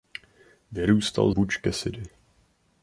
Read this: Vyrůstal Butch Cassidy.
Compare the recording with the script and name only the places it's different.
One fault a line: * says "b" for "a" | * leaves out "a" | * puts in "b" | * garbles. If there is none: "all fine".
all fine